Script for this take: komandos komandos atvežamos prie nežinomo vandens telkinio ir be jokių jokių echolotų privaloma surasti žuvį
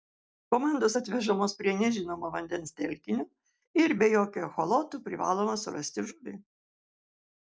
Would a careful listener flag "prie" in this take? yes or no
no